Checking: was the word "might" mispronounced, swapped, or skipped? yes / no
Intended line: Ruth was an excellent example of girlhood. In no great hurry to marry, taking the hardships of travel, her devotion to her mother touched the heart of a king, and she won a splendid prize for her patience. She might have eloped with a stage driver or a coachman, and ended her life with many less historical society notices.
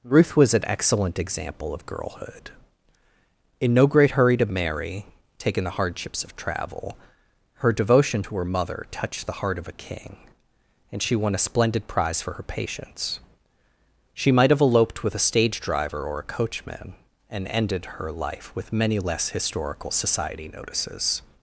no